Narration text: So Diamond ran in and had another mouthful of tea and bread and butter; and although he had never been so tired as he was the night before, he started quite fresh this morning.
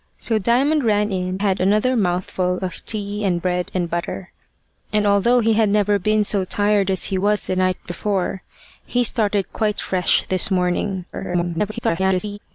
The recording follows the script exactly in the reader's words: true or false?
false